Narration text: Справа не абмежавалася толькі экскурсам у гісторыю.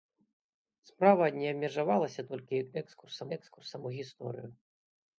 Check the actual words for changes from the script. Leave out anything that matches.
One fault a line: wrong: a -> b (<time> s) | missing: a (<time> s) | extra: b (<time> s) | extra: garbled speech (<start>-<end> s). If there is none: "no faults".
extra: экскурсам (3.4 s)